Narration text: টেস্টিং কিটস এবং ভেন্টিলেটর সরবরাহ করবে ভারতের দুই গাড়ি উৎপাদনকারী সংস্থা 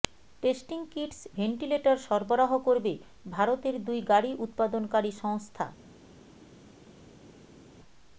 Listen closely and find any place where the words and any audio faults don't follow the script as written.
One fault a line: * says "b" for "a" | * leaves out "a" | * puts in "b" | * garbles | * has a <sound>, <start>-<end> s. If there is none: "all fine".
* leaves out "এবং"